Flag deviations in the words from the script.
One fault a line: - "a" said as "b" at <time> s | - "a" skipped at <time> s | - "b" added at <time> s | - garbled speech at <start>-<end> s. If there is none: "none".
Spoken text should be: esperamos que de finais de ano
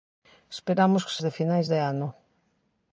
none